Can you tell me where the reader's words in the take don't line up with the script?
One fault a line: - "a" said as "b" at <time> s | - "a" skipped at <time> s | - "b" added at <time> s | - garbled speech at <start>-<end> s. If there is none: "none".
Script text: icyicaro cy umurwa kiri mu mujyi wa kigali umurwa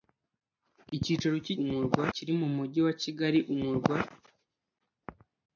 none